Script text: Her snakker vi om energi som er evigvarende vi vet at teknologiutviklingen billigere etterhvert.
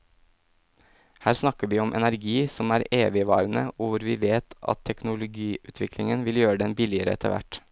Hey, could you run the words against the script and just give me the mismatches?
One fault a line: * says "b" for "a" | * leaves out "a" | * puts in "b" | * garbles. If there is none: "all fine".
* puts in "og hvor"
* puts in "vil gjøre den"